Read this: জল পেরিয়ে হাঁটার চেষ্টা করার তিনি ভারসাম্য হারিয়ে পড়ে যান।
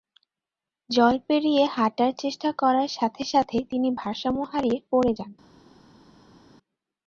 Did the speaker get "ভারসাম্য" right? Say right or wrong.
right